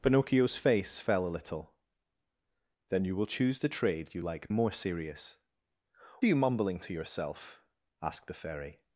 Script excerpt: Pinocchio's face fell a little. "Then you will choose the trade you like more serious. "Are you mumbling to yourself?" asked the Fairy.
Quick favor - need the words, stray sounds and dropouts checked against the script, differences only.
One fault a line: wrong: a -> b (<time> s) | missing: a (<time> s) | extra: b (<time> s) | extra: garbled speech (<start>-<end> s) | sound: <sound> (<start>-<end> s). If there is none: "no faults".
no faults